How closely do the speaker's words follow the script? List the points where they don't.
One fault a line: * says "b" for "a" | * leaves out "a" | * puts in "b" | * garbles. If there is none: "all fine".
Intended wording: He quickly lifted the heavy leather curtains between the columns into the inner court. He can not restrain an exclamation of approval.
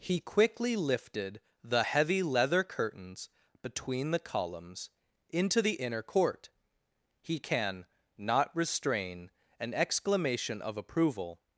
all fine